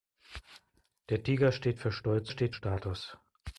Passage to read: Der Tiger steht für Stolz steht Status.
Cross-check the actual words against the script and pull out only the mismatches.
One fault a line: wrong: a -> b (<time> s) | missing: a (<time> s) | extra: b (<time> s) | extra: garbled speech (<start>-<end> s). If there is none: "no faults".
no faults